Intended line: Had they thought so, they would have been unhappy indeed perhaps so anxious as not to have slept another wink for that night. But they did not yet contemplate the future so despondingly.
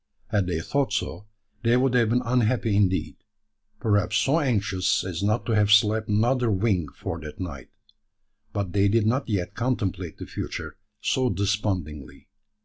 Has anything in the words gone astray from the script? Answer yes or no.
no